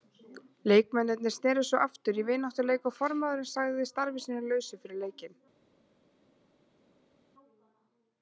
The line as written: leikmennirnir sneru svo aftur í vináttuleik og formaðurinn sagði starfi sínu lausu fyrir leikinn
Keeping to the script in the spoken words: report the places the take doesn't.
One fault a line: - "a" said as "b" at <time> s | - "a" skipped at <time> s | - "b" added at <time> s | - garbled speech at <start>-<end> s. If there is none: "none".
none